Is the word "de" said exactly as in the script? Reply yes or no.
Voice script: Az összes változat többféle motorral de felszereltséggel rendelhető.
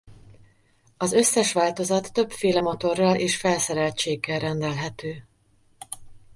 no